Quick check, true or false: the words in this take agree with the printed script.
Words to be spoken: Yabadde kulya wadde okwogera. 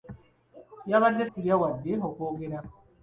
true